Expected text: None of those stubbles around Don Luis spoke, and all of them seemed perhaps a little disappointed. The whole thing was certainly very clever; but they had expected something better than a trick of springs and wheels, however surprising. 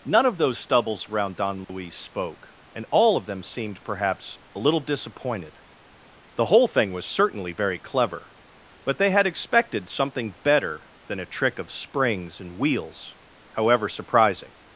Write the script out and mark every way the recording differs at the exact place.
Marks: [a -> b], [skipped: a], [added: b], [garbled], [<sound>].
None of those stubbles around Don Luis [dropout] spoke, and all of them seemed perhaps a little disappointed. The whole thing was certainly very clever; but they had expected something better than a trick of springs and wheels, however surprising.